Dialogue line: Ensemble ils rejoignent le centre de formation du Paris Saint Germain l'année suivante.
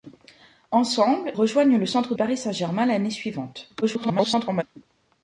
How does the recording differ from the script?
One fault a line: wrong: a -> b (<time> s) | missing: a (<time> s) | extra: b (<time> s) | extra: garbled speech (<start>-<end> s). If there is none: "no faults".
missing: ils (1.3 s)
missing: de formation du (2.1 s)
extra: garbled speech (3.8-4.6 s)